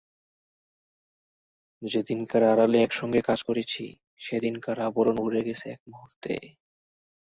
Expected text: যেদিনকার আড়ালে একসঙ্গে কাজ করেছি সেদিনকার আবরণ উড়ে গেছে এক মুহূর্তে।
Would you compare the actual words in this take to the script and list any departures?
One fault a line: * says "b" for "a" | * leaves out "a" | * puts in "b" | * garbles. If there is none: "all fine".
all fine